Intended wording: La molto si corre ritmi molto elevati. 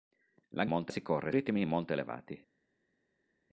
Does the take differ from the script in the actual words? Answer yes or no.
no